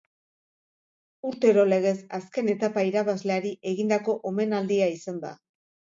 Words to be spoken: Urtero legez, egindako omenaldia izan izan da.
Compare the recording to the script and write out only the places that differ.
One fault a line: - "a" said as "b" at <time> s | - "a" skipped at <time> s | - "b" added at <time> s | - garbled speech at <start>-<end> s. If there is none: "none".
- "azken etapa irabazleari" added at 2.2 s
- "izan" skipped at 5.2 s